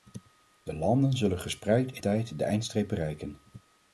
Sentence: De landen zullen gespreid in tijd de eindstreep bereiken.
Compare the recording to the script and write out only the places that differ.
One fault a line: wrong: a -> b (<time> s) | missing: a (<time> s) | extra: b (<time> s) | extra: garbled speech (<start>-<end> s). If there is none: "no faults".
no faults